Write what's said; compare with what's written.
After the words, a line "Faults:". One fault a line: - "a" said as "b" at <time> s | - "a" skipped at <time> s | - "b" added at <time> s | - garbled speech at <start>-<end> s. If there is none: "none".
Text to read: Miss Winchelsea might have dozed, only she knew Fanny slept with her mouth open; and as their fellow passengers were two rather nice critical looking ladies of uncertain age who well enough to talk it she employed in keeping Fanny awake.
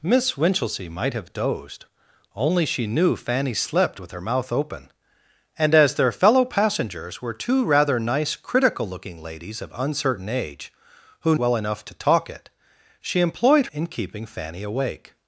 Miss Winchelsea might have dozed, only she knew Fanny slept with her mouth open; and as their fellow passengers were two rather nice critical looking ladies of uncertain age who well enough to talk it she employed in keeping Fanny awake.
Faults:
none